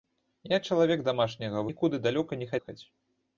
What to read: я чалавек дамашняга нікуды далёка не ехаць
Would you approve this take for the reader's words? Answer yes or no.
yes